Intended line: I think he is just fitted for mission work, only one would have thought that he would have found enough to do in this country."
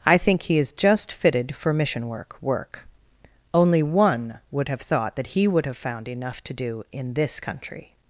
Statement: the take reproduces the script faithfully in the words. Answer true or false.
false